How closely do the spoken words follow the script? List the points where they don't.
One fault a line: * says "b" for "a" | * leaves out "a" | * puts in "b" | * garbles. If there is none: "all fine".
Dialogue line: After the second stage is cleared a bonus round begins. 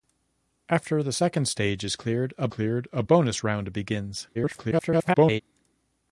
* puts in "cleared a"
* garbles